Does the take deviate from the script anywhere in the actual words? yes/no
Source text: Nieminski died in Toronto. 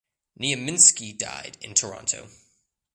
no